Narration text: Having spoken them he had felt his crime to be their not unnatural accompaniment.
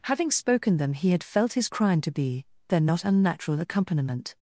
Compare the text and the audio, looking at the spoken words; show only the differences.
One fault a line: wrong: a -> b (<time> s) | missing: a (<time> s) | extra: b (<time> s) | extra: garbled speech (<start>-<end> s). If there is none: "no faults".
no faults